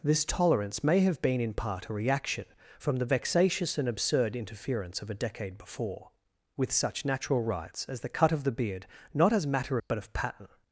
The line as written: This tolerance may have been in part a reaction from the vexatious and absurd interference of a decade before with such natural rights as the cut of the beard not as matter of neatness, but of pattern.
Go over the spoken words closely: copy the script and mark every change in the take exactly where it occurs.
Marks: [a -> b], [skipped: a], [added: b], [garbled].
This tolerance may have been in part a reaction from the vexatious and absurd interference of a decade before with such natural rights as the cut of the beard not as matter [skipped: of neatness,] but of pattern.